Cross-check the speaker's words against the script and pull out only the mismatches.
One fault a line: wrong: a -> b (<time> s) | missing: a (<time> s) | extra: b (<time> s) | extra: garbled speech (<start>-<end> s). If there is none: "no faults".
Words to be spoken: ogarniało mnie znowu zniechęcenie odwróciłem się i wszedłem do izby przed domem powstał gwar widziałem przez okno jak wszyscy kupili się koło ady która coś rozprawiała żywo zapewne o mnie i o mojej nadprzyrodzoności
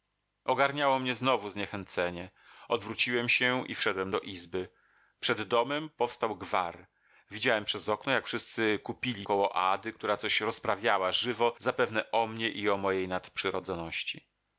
missing: się (9.3 s)